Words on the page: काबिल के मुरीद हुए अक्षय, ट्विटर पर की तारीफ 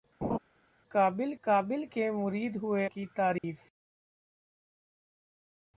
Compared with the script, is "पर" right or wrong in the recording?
wrong